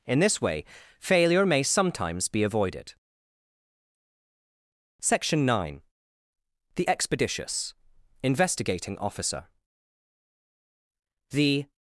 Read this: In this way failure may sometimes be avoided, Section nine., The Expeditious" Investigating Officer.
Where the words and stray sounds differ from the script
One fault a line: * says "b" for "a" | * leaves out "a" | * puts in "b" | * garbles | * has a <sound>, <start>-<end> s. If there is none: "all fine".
* puts in "The"